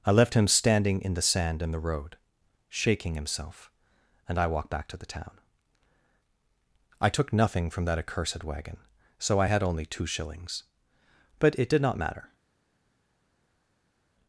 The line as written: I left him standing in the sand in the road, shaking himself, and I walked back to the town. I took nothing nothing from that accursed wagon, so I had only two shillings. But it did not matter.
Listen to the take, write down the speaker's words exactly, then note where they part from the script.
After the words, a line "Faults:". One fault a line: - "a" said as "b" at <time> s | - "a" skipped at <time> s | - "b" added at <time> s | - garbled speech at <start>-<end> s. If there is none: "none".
I left him standing in the sand in the road, shaking himself, and I walked back to the town. I took nothing from that accursed wagon, so I had only two shillings. But it did not matter.
Faults:
- "nothing" skipped at 7.7 s